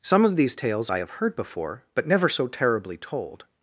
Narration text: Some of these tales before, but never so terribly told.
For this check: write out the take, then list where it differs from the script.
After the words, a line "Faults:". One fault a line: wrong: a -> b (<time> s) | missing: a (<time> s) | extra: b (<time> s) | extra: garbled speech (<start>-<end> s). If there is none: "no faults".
Some of these tales I have heard before, but never so terribly told.
Faults:
extra: I have heard (0.9 s)